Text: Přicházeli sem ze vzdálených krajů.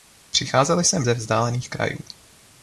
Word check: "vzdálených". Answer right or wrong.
right